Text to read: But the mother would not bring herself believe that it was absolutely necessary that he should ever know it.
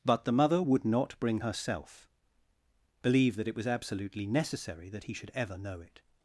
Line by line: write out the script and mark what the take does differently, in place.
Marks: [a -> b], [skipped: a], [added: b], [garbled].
But the mother would not bring herself believe that it was absolutely necessary that he should ever know it.